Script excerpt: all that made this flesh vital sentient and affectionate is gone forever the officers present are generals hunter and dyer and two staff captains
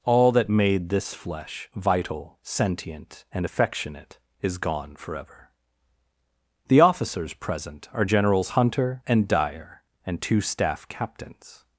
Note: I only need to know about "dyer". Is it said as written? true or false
true